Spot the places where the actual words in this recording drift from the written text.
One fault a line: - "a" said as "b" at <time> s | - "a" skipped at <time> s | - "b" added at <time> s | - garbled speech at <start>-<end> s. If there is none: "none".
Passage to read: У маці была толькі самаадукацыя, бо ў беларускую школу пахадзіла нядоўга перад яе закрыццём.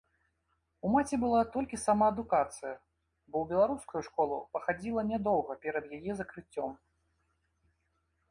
none